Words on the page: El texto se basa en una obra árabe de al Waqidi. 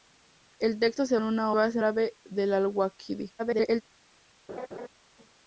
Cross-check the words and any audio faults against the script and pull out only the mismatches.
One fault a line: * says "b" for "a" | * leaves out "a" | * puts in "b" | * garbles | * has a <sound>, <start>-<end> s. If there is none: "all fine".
* leaves out "basa"
* says "basa" for "obra"
* garbles
* has a laugh, 4.5-4.9 s